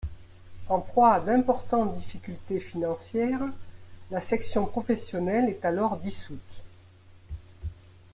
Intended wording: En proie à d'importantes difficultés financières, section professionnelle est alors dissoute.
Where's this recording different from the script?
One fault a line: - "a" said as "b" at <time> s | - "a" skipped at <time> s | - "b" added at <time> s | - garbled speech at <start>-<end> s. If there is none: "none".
- "la" added at 4.1 s